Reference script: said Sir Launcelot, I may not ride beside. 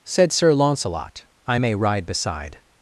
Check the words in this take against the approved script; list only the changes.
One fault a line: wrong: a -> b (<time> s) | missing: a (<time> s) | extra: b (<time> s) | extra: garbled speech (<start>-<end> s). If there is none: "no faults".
missing: not (1.7 s)